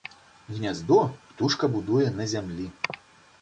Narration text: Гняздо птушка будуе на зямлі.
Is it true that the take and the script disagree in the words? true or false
false